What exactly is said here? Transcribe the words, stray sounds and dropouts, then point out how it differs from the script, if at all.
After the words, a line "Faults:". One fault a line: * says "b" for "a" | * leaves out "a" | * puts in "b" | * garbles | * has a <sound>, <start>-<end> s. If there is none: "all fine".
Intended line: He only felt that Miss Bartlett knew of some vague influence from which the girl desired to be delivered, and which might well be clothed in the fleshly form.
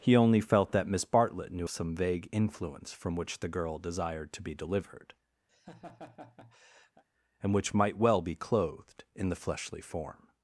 He only felt that Miss Bartlett knew some vague influence from which the girl desired to be delivered, and which might well be clothed in the fleshly form.
Faults:
* leaves out "of"
* has a laugh, 5.5-7.0 s